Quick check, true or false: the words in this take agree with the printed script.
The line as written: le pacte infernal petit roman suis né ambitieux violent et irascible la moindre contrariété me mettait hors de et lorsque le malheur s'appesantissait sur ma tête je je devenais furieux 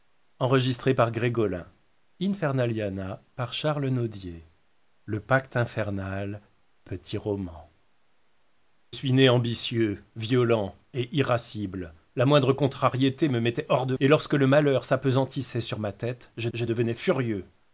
true